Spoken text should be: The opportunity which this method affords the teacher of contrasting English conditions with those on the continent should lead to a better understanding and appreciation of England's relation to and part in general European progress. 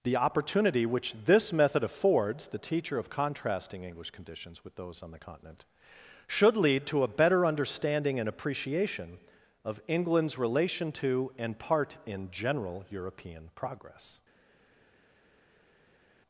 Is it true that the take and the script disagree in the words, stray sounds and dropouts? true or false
false